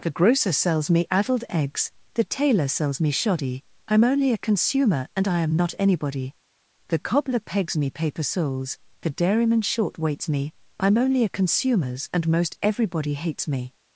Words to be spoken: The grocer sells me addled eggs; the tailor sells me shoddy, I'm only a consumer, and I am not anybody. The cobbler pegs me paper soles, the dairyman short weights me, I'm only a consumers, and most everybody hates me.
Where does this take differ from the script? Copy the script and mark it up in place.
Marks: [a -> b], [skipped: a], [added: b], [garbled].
The grocer sells me addled eggs; the tailor sells me shoddy, I'm only a consumer, and I am not anybody. The cobbler pegs me paper soles, the dairyman short weights me, I'm only a consumers, and most everybody hates me.